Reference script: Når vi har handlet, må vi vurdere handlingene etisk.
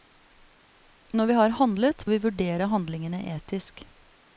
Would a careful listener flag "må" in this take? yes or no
yes